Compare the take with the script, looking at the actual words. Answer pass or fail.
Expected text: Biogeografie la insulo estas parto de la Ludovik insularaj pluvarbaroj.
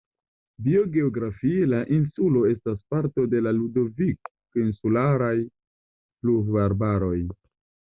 pass